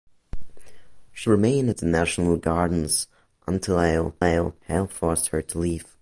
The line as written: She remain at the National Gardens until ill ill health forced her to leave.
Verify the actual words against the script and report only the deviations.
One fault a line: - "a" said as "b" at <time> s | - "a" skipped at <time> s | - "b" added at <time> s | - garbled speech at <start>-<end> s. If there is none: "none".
none